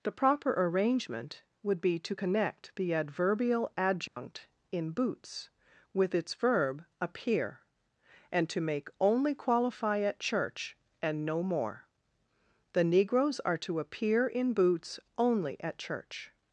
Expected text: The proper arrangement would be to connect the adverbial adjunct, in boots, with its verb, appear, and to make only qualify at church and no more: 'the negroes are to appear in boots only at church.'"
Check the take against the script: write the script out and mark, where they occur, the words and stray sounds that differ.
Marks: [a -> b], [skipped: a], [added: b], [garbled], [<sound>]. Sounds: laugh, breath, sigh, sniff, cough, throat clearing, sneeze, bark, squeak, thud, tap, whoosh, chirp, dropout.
The proper arrangement would be to connect the adverbial adjunct, [dropout] in boots, with its verb, appear, and to make only qualify at church and no more: 'the negroes are to appear in boots only at church.'"